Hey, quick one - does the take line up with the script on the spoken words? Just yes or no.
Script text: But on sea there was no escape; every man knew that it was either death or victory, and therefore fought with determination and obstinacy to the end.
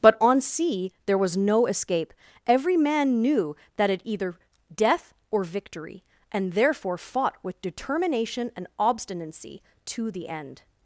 no